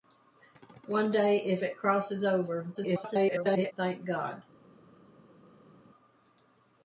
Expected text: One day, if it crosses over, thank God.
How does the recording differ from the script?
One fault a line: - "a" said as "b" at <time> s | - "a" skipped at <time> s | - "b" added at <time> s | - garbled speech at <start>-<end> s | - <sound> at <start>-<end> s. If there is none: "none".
- garbled speech at 2.7-3.7 s